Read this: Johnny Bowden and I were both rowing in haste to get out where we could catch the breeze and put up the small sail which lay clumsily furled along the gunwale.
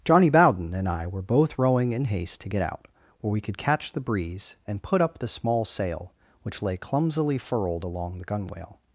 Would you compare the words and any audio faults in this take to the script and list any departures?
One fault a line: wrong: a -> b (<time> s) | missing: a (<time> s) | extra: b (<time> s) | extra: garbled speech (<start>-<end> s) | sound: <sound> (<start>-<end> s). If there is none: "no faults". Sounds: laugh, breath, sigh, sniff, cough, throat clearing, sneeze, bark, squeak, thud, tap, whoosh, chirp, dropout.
no faults